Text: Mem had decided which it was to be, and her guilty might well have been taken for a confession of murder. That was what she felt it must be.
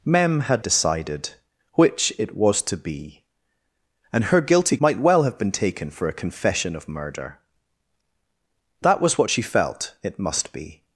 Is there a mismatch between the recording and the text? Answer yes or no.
no